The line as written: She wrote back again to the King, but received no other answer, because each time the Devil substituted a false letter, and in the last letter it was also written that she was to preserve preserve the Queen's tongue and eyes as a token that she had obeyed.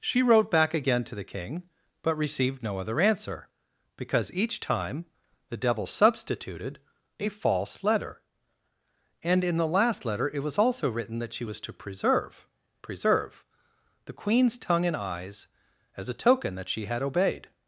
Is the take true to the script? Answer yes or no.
yes